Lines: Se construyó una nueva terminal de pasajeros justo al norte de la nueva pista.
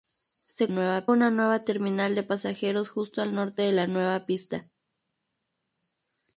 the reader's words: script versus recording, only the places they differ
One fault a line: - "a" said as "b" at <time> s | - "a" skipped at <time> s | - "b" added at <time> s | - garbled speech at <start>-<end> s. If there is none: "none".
- "construyó" said as "nueva" at 0.7 s